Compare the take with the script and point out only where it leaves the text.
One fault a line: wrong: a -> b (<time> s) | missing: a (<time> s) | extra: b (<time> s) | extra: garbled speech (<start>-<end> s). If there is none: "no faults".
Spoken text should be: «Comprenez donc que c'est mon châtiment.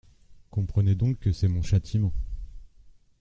no faults